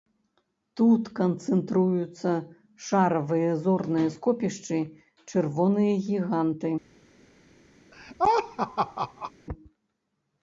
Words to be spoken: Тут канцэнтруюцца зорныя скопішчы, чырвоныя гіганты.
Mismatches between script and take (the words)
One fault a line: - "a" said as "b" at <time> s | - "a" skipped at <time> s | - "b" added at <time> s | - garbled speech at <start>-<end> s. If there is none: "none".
- "шаравыя" added at 2.9 s